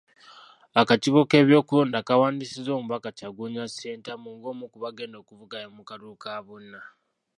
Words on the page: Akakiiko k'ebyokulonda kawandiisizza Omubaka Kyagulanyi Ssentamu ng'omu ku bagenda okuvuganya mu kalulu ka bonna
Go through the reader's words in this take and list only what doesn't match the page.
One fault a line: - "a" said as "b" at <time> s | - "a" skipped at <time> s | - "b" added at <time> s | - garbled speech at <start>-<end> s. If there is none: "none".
none